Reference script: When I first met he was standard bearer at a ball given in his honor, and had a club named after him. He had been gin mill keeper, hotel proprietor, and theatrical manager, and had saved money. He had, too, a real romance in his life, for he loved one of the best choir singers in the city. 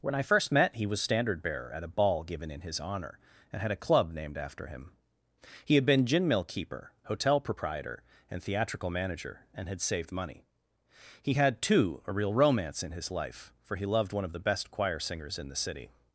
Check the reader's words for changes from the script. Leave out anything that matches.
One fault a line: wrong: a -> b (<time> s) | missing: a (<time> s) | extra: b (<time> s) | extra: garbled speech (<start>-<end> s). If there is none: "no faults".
no faults